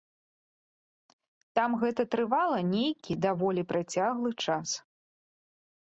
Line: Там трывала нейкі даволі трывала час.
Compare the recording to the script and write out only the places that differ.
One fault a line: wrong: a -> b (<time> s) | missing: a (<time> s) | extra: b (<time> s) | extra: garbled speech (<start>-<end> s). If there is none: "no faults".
extra: гэта (1.9 s)
wrong: трывала -> працяглы (3.8 s)